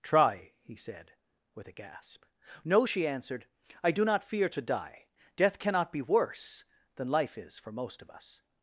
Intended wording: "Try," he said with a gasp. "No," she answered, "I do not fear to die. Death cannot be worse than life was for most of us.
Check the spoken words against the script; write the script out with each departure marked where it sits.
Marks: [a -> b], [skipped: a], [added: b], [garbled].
"Try," he said with a gasp. "No," she answered, "I do not fear to die. Death cannot be worse than life [was -> is] for most of us.